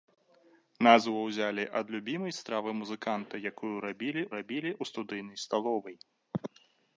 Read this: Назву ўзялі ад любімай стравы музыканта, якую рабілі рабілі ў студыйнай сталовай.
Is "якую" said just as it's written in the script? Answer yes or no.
yes